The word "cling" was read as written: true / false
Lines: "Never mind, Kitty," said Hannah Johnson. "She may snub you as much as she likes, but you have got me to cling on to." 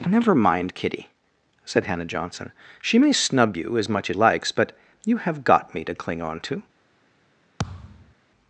true